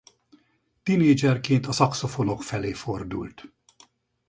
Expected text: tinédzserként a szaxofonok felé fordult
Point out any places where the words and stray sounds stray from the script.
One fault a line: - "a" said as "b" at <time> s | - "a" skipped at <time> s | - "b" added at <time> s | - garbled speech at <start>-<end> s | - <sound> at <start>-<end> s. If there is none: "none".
none